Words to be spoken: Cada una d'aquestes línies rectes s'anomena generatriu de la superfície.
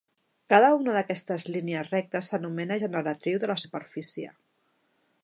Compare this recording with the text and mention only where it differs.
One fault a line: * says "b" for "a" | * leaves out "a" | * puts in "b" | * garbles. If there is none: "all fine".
all fine